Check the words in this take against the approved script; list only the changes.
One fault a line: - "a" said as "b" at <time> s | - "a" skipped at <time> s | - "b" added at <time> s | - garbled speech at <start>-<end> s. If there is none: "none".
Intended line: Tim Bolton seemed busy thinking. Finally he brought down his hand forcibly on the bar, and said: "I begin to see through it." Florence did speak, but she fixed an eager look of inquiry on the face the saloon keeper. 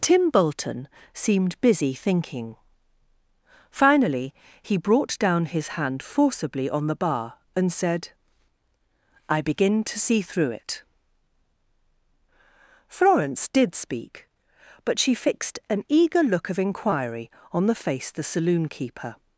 none